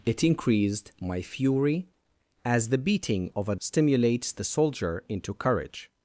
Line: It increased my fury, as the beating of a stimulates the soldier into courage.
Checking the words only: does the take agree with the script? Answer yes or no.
yes